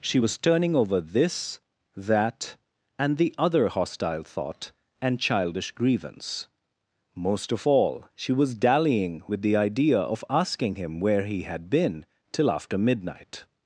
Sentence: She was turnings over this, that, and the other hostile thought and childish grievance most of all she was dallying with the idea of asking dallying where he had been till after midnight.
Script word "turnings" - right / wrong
wrong